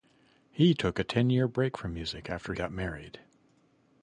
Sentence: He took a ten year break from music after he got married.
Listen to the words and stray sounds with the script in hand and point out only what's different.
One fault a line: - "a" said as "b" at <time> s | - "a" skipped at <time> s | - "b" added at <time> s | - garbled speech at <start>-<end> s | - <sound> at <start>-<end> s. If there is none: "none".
- "he" skipped at 2.5 s